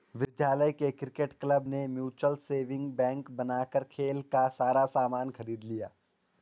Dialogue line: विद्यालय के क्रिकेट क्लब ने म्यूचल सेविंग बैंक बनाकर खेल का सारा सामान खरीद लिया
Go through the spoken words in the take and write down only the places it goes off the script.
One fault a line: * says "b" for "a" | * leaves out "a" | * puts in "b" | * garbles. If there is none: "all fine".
all fine